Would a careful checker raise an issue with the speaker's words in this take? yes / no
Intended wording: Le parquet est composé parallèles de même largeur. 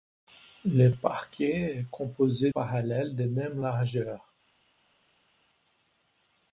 no